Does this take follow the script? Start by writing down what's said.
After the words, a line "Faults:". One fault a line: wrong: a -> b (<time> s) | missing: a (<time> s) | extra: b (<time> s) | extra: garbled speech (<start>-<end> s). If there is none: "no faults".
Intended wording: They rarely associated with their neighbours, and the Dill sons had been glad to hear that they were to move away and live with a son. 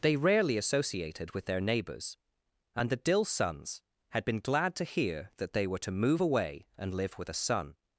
They rarely associated with their neighbours, and the Dill sons had been glad to hear that they were to move away and live with a son.
Faults:
no faults